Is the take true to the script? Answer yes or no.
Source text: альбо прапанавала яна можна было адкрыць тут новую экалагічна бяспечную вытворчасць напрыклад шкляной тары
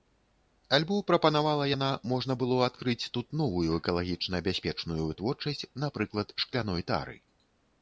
yes